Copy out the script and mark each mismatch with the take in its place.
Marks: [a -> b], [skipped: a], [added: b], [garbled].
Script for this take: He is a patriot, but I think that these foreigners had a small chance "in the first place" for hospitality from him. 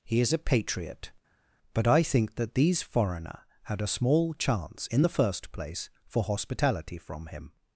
He is a patriot, but I think that these [foreigners -> foreigner] had a small chance "in the first place" for hospitality from him.